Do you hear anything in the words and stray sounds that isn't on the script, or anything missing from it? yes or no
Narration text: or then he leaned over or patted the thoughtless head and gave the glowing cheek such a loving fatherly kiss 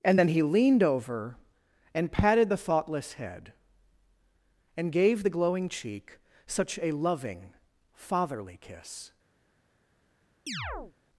yes